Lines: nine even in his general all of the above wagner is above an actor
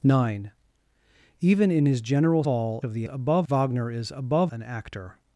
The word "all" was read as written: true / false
true